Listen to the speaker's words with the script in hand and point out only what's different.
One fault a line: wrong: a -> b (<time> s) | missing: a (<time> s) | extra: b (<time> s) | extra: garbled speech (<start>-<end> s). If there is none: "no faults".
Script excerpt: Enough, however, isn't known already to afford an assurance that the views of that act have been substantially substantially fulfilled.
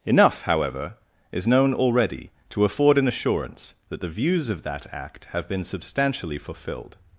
wrong: isn't -> is (1.3 s)
missing: substantially (6.4 s)